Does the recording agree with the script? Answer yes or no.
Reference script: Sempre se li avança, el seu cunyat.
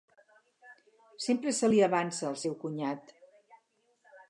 yes